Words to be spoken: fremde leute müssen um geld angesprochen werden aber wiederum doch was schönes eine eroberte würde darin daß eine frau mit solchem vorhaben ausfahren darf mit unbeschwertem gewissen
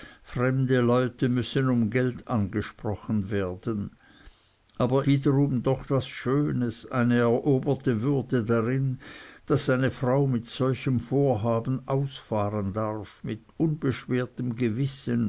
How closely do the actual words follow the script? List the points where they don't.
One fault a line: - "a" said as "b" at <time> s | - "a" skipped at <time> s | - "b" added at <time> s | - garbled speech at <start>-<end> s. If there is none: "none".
none